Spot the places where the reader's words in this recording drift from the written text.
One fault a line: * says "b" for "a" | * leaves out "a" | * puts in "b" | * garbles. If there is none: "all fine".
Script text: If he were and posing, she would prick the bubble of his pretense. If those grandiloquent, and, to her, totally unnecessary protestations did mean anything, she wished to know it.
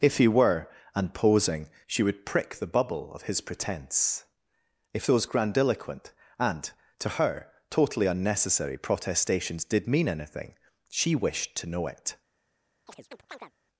all fine